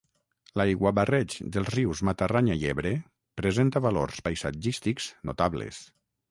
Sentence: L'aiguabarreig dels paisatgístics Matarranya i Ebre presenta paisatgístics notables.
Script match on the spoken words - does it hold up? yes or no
no